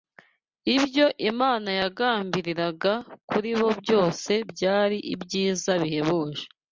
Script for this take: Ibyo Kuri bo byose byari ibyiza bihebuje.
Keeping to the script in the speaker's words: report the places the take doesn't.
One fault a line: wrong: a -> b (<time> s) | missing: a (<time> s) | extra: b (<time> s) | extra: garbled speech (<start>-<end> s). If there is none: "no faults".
extra: Imana yagambiriraga (1.3 s)